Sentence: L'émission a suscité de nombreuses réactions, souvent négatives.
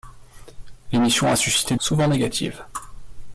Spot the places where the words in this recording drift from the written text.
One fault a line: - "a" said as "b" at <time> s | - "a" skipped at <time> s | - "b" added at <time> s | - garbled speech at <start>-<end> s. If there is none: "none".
- "de nombreuses réactions" skipped at 1.8 s